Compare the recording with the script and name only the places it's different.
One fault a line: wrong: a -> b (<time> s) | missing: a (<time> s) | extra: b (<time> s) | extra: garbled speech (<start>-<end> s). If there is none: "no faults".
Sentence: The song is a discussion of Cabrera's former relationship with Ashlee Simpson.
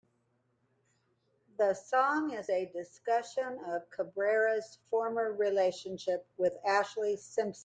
no faults